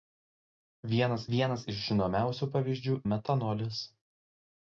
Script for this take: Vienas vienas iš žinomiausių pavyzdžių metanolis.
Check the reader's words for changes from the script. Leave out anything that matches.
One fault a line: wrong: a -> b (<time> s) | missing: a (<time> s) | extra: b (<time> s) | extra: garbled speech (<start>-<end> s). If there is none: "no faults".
no faults